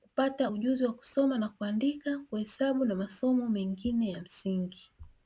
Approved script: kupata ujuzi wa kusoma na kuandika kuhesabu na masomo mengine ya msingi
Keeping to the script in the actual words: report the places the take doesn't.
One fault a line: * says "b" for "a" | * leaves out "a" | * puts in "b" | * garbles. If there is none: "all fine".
all fine